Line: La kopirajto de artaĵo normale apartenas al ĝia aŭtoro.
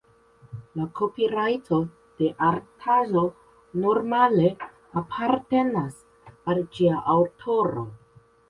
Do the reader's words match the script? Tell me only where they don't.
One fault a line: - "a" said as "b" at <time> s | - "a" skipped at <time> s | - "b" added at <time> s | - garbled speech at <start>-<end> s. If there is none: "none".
none